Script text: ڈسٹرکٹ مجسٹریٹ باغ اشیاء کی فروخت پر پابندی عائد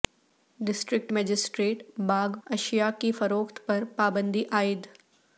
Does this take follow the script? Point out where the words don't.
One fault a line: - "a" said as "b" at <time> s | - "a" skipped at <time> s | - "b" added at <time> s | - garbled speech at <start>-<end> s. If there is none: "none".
none